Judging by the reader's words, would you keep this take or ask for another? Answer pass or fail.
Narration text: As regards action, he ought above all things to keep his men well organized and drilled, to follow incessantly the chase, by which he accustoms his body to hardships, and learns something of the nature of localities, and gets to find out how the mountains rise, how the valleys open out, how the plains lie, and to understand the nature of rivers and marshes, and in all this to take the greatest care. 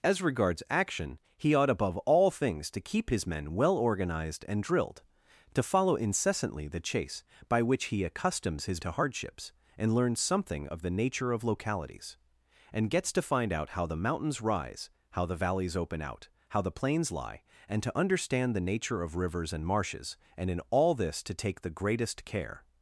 fail